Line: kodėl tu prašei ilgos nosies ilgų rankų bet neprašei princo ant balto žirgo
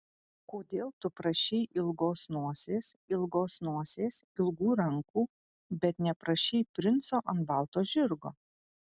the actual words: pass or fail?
fail